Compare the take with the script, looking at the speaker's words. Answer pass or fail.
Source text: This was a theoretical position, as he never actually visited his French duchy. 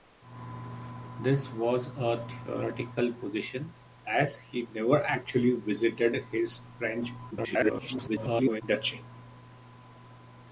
fail